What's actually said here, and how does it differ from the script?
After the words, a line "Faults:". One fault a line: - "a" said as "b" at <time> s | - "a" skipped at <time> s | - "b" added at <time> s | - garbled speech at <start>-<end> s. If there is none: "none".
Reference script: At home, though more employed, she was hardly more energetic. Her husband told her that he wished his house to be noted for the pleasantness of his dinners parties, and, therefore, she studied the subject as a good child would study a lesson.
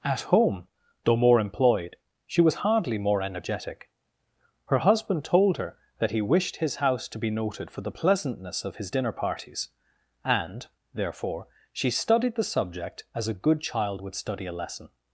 At home, though more employed, she was hardly more energetic. Her husband told her that he wished his house to be noted for the pleasantness of his dinner parties, and, therefore, she studied the subject as a good child would study a lesson.
Faults:
- "dinners" said as "dinner" at 8.9 s